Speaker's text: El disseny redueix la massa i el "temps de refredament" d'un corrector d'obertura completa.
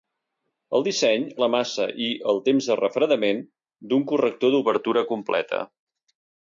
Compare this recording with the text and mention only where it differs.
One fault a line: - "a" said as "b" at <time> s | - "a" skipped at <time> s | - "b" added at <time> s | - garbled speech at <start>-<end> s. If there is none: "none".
- "redueix" skipped at 1.3 s